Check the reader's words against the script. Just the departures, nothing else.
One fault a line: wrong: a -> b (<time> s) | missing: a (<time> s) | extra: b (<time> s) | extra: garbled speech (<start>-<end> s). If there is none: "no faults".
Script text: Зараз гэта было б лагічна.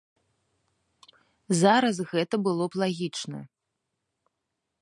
no faults